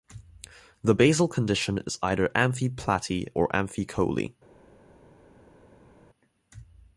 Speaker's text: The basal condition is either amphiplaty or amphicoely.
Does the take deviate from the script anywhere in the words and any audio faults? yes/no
no